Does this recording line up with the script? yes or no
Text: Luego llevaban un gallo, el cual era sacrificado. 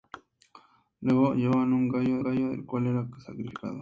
no